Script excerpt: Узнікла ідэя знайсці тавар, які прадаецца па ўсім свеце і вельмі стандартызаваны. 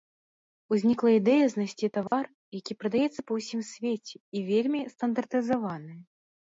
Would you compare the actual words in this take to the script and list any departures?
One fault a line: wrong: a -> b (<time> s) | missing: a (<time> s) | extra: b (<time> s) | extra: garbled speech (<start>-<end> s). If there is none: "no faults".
no faults